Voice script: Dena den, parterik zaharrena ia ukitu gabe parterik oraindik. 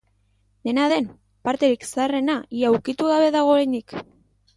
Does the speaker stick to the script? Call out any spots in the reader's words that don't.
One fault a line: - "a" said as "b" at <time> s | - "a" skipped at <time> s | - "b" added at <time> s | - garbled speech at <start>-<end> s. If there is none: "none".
- "parterik" said as "dago" at 3.4 s